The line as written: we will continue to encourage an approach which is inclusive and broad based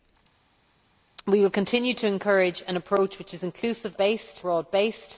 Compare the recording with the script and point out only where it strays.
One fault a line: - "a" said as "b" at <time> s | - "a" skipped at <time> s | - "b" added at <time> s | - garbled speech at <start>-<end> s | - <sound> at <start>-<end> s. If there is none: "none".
- "and" said as "based" at 4.0 s